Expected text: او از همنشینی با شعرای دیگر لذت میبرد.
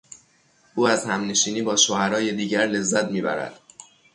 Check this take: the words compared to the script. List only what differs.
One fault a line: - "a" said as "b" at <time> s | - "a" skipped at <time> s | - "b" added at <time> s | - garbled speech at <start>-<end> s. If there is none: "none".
none